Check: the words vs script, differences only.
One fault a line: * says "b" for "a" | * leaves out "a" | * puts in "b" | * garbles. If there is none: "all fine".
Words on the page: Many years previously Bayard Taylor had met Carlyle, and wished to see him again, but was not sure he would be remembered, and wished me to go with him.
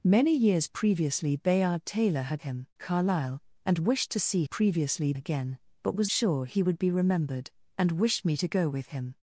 * says "him" for "met"
* says "previously" for "him"
* leaves out "not"